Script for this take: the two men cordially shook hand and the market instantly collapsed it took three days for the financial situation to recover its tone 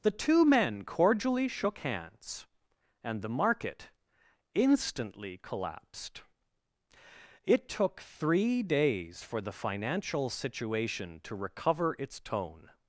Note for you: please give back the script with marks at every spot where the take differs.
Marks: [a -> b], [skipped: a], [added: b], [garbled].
the two men cordially shook [hand -> hands] and the market instantly collapsed it took three days for the financial situation to recover its tone